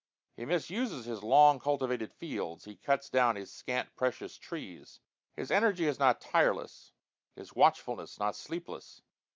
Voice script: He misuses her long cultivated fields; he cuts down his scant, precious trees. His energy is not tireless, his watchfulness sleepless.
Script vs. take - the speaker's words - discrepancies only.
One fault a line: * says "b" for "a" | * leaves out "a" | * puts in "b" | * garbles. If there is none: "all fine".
* says "his" for "her"
* puts in "not"